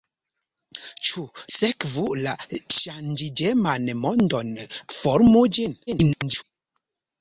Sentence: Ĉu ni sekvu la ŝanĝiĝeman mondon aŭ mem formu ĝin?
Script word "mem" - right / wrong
wrong